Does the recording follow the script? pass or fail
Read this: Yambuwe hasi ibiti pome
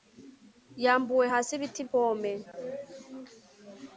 pass